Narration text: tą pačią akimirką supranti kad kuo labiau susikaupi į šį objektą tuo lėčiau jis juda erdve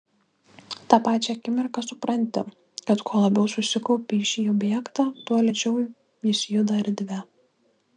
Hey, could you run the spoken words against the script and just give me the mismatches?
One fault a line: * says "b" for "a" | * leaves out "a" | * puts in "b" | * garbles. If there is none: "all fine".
all fine